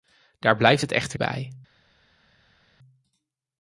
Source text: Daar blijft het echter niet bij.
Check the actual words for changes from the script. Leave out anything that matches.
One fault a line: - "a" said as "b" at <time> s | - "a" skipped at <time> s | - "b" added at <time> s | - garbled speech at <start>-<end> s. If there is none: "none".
- "niet" skipped at 1.2 s